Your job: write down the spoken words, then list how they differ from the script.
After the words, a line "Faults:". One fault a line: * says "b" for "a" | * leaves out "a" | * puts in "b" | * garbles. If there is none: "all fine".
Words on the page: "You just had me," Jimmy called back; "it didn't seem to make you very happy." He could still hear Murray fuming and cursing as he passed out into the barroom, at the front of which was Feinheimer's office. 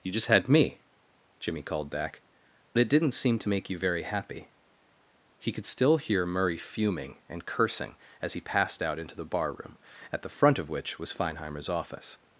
"You just had me," Jimmy called back; "it didn't seem to make you very happy." He could still hear Murray fuming and cursing as he passed out into the barroom, at the front of which was Feinheimer's office.
Faults:
all fine